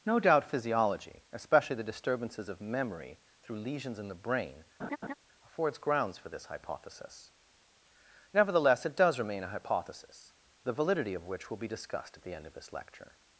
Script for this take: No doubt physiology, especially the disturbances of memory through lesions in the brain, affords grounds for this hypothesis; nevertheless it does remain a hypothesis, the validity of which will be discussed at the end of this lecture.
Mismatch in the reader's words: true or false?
false